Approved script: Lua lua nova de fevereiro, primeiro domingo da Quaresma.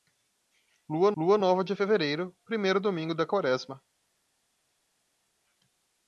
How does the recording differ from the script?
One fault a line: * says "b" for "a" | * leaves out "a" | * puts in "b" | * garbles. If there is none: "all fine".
all fine